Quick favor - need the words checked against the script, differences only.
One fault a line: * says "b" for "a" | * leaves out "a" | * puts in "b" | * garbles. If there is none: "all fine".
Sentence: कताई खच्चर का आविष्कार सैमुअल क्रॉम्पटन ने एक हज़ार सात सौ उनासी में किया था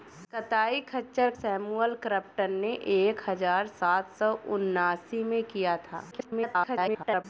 * leaves out "का आविष्कार"
* garbles